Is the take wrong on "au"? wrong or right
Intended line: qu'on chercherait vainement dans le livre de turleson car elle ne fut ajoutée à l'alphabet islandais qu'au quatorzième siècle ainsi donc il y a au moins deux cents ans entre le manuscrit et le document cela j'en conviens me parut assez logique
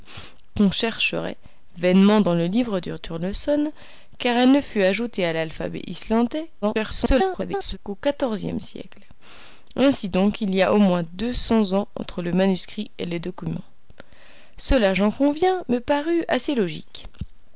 right